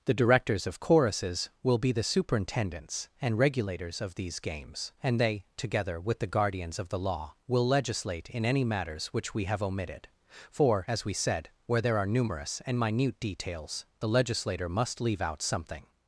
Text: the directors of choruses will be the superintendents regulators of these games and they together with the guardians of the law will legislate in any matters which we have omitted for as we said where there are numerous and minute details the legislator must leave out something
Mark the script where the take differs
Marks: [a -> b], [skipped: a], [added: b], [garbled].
the directors of choruses will be the superintendents [added: and] regulators of these games and they together with the guardians of the law will legislate in any matters which we have omitted for as we said where there are numerous and minute details the legislator must leave out something